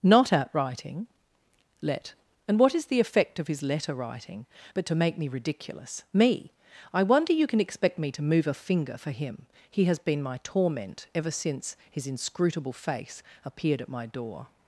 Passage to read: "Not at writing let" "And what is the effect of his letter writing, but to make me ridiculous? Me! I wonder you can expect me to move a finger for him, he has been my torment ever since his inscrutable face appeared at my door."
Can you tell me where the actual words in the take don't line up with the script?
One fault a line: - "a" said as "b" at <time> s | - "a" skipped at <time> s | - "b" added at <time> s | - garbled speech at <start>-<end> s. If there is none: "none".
none